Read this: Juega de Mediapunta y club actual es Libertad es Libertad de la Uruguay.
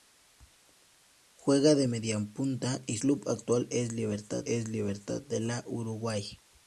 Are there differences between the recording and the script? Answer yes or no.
no